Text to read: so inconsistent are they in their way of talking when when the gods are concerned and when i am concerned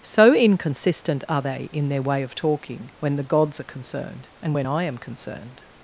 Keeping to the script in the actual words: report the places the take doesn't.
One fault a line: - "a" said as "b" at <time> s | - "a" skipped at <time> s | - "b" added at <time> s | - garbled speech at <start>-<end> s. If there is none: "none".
- "when" skipped at 3.2 s